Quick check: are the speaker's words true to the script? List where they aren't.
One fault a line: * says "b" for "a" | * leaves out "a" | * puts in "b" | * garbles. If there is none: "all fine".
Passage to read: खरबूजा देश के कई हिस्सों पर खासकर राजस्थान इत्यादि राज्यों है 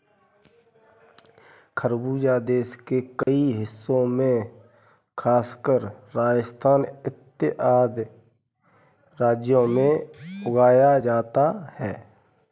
* says "में" for "पर"
* puts in "में उगाया जाता"